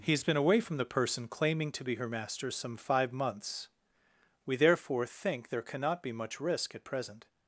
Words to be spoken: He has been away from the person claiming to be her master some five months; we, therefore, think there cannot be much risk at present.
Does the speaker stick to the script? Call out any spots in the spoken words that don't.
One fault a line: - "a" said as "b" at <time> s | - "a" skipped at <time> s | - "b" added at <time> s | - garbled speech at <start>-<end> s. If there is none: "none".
none